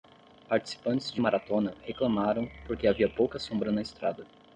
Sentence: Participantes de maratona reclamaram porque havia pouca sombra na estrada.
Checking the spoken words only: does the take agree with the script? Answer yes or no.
yes